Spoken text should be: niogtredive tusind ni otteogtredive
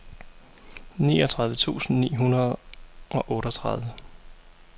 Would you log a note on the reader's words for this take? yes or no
yes